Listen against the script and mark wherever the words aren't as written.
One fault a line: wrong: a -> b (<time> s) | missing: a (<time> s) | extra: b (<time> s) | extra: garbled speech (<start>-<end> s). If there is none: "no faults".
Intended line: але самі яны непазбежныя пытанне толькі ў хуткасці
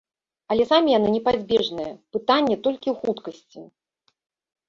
no faults